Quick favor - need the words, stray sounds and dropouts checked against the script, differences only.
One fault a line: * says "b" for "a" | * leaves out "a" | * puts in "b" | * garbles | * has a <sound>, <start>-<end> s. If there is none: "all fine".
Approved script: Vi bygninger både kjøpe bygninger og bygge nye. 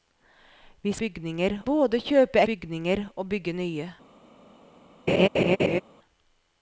* has a laugh, 5.1-5.8 s